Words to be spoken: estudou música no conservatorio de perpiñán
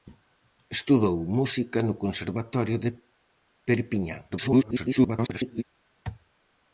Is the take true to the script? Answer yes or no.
no